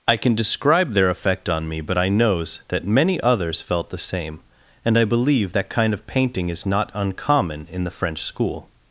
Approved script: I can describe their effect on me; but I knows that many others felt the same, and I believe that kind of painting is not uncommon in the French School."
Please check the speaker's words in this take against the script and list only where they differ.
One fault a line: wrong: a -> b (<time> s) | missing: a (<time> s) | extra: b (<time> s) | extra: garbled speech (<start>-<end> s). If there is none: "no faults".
no faults